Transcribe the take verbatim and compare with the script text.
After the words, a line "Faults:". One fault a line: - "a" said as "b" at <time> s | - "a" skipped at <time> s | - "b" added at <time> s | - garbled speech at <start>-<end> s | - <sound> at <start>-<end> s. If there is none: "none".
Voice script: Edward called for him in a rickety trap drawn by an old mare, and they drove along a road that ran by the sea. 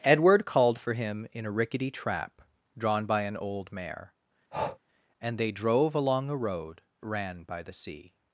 Edward called for him in a rickety trap drawn by an old mare, and they drove along a road ran by the sea.
Faults:
- breath at 4.5-4.8 s
- "that" skipped at 6.8 s